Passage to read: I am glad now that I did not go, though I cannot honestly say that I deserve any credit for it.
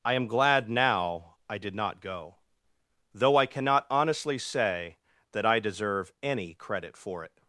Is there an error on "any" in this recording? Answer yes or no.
no